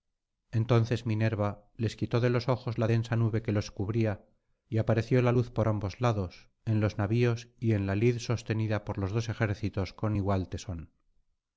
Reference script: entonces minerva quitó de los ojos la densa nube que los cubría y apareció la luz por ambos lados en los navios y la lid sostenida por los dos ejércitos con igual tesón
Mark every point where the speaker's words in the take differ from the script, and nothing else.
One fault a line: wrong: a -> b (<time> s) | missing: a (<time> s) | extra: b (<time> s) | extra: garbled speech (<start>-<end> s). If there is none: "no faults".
extra: les (1.8 s)
extra: en (7.7 s)